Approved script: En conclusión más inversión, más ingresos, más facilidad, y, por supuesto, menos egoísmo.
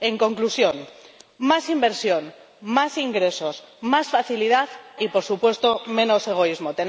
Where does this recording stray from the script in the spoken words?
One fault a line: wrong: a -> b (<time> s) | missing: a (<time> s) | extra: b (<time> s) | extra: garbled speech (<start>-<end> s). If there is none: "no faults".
no faults